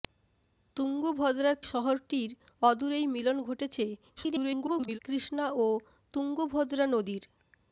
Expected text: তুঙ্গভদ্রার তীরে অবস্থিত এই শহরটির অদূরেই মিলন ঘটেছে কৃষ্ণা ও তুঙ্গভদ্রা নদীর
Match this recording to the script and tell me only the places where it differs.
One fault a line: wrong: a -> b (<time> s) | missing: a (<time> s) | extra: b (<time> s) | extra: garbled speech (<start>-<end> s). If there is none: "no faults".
missing: তীরে অবস্থিত এই (1.6 s)
extra: garbled speech (4.2-5.0 s)